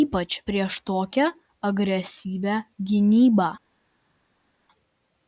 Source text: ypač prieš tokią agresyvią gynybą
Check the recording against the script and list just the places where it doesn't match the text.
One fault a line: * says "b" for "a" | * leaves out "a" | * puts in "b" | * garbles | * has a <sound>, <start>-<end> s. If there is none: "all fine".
all fine